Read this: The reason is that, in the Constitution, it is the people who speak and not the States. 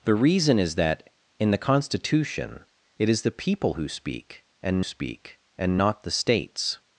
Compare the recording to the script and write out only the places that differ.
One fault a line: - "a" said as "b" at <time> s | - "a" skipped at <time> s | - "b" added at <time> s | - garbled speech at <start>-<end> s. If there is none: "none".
- "speak and" added at 4.8 s